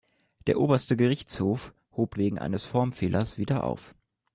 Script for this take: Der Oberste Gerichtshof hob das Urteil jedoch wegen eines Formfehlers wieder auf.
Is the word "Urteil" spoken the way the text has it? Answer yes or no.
no